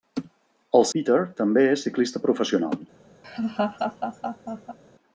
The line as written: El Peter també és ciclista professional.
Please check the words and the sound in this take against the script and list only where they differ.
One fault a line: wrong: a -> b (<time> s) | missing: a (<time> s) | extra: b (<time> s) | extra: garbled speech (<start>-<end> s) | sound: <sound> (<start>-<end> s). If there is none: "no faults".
sound: laugh (3.2-4.8 s)